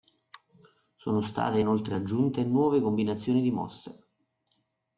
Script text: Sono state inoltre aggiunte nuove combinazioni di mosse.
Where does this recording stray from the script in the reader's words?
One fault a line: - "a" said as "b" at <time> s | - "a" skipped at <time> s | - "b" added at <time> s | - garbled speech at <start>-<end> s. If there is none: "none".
none